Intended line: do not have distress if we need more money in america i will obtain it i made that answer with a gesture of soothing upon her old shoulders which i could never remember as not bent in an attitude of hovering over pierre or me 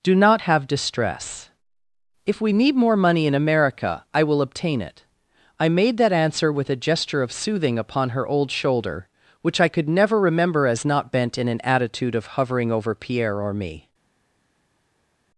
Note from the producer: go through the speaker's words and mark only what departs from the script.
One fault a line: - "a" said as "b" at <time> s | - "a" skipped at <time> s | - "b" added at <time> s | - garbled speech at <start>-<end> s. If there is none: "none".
- "shoulders" said as "shoulder" at 8.5 s